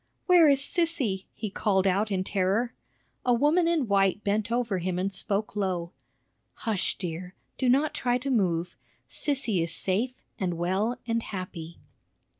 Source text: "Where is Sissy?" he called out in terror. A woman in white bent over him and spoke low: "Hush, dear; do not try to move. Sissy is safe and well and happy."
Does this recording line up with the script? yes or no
yes